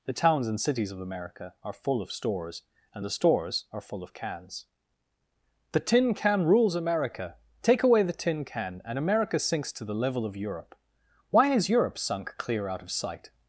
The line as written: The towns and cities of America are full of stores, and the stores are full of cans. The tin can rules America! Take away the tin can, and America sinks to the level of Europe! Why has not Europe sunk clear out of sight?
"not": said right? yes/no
no